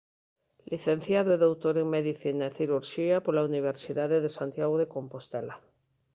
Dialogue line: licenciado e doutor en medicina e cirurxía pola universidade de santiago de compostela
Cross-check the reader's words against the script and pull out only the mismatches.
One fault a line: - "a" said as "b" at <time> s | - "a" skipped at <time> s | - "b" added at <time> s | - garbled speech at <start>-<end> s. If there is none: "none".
none